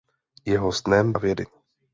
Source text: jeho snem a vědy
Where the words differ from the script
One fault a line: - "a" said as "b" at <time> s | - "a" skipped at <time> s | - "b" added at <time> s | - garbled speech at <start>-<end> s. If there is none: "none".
none